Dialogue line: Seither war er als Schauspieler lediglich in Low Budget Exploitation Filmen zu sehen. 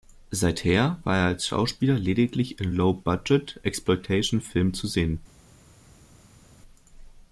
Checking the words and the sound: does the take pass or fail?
pass